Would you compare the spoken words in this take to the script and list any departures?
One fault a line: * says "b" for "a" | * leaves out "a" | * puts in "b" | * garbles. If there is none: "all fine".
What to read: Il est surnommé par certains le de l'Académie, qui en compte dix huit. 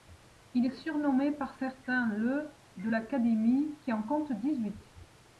all fine